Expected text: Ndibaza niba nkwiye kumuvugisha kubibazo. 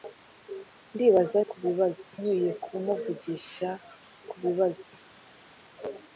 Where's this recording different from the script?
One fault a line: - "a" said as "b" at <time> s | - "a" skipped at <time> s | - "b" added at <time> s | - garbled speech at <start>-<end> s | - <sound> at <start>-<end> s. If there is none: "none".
- "niba" said as "kubibazo" at 1.5 s